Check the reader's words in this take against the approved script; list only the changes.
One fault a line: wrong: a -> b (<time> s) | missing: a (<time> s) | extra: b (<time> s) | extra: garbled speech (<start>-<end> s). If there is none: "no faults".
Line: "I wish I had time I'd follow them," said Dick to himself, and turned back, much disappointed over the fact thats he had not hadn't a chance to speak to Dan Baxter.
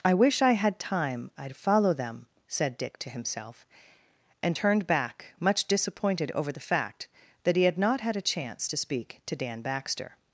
wrong: thats -> that (7.4 s)
wrong: hadn't -> had (8.0 s)